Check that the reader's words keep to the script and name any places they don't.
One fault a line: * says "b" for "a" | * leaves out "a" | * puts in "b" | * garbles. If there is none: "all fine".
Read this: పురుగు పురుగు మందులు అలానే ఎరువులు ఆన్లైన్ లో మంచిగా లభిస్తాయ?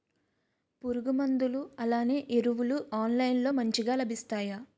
* leaves out "పురుగు"